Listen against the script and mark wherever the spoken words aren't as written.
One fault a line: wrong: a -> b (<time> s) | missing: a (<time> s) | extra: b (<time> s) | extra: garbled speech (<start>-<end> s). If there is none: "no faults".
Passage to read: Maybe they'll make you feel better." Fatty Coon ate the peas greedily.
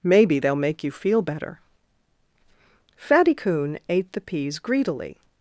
no faults